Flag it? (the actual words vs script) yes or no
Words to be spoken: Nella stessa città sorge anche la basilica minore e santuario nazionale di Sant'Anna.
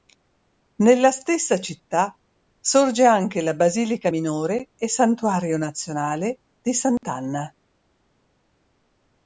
no